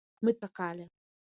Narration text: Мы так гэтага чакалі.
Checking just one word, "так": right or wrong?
wrong